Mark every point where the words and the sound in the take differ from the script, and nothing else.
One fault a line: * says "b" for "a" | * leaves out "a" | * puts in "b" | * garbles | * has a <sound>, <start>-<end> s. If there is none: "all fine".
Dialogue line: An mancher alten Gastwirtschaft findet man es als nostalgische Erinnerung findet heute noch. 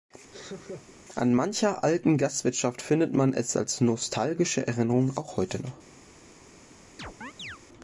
* has a laugh, 0.3-1.0 s
* says "auch" for "findet"
* has a chirp, 7.0-7.6 s